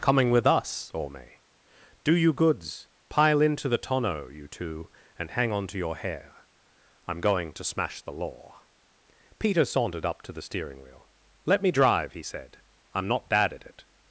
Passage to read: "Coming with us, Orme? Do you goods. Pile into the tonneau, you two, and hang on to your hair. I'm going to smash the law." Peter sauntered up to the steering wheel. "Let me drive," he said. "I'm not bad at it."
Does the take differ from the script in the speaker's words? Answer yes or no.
no